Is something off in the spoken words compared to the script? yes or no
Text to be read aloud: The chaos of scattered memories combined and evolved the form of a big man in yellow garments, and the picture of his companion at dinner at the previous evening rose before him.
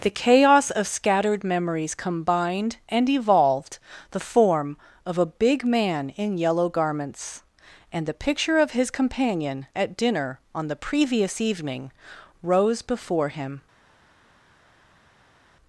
yes